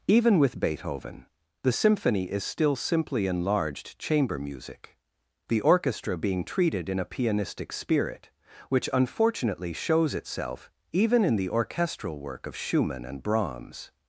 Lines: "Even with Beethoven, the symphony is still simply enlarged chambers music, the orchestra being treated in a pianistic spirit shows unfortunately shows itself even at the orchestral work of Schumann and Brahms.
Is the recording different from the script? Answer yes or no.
yes